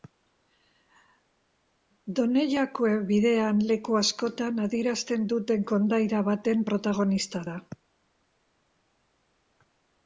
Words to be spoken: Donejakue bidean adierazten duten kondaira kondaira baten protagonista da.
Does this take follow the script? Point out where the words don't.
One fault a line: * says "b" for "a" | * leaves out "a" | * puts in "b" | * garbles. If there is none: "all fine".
* puts in "leku askotan"
* leaves out "kondaira"